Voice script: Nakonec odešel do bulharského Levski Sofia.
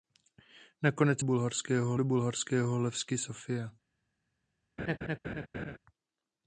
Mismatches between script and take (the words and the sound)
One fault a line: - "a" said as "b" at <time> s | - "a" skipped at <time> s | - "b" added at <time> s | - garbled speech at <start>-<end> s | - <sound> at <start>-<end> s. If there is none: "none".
- "odešel" said as "bulharského" at 1.2 s
- laugh at 4.8-5.8 s